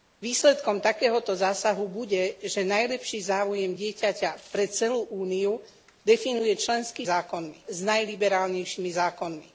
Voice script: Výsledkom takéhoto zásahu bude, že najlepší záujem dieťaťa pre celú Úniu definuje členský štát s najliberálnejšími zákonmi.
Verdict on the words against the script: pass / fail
fail